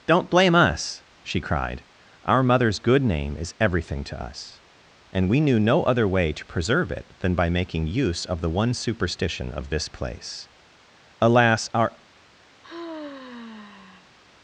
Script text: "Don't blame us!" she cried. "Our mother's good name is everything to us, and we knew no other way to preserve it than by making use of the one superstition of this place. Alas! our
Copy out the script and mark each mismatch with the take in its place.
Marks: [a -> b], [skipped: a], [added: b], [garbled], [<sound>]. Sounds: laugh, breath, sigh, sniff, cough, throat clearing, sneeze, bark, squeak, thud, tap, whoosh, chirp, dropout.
"Don't blame us!" she cried. "Our mother's good name is everything to us, and we knew no other way to preserve it than by making use of the one superstition of this place. Alas! our [sigh]